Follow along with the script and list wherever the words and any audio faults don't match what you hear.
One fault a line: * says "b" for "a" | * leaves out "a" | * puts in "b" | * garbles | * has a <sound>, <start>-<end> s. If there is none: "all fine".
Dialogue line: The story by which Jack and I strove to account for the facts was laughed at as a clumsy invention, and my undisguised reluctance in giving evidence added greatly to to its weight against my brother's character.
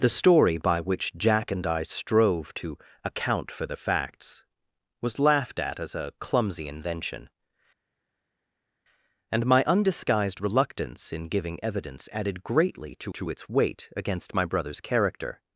all fine